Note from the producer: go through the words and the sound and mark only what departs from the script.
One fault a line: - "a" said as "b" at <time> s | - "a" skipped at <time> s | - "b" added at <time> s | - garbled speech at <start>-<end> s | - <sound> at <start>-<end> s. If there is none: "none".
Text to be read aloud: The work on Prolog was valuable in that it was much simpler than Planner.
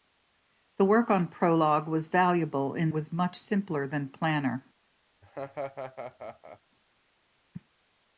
- "that it" skipped at 2.9 s
- laugh at 5.2-6.6 s